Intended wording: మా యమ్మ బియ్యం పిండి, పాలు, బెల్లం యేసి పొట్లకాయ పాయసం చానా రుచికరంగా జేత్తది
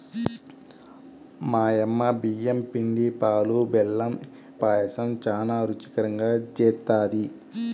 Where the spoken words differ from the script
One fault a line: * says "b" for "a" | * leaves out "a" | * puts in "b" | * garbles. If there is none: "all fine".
* leaves out "యేసి పొట్లకాయ"